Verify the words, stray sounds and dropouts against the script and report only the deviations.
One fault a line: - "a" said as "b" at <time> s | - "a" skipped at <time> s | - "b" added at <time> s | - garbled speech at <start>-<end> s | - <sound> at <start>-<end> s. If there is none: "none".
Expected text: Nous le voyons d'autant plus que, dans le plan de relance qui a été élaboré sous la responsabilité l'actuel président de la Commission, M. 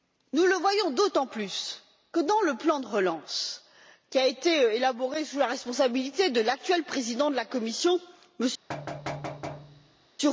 - "de" added at 6.3 s
- thud at 8.7-10.1 s